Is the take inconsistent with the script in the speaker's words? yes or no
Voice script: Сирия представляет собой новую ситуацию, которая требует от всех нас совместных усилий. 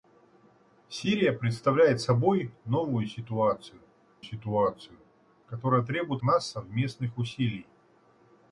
yes